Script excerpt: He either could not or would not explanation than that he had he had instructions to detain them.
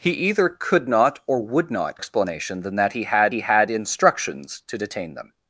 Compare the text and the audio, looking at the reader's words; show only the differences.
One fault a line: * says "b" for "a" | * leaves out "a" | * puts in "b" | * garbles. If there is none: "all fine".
all fine